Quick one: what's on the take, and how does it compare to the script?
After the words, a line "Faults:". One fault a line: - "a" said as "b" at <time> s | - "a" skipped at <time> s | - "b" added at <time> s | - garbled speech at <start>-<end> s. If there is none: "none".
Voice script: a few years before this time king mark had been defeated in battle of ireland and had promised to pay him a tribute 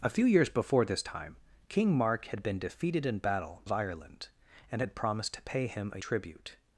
a few years before this time king mark had been defeated in battle of ireland and had promised to pay him a tribute
Faults:
none